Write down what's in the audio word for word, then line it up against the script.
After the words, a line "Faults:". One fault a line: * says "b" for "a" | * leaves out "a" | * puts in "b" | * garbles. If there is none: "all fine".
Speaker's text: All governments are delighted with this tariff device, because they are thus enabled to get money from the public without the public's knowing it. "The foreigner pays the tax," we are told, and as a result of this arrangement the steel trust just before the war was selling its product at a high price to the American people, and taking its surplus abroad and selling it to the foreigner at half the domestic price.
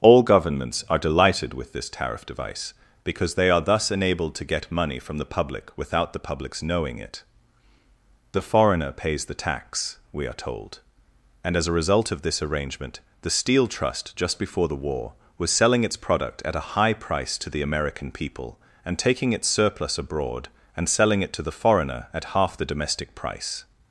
All governments are delighted with this tariff device, because they are thus enabled to get money from the public without the public's knowing it. "The foreigner pays the tax," we are told, and as a result of this arrangement the steel trust just before the war was selling its product at a high price to the American people, and taking its surplus abroad and selling it to the foreigner at half the domestic price.
Faults:
all fine